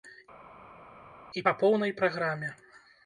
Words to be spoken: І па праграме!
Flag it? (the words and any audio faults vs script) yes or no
yes